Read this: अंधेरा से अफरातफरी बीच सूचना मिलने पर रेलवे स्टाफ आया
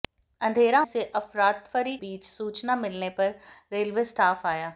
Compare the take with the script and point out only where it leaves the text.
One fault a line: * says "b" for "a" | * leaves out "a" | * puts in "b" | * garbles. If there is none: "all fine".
all fine